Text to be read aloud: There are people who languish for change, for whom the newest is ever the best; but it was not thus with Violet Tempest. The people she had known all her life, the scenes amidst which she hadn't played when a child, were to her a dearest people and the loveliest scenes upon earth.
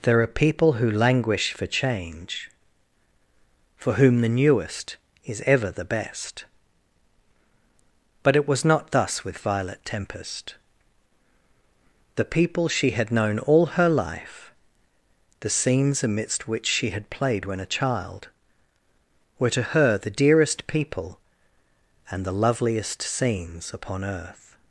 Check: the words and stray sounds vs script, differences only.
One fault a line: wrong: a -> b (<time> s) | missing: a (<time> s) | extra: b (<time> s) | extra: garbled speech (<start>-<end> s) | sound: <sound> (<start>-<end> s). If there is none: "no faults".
wrong: hadn't -> had (16.9 s)
wrong: a -> the (20.0 s)